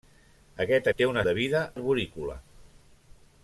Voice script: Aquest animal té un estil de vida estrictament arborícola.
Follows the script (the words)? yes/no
no